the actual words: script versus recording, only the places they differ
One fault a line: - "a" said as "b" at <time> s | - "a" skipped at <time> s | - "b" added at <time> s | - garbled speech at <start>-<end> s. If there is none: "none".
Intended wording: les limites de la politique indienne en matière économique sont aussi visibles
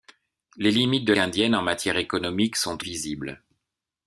- "la politique" skipped at 1.1 s
- "aussi" skipped at 2.8 s